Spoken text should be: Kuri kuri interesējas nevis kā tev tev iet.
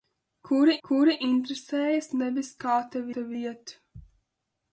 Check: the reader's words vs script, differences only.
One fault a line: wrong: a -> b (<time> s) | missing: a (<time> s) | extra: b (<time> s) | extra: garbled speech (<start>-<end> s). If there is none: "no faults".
no faults